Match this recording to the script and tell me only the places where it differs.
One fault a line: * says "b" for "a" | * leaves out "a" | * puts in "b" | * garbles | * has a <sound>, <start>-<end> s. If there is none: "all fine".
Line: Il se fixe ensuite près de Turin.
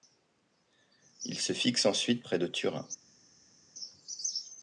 all fine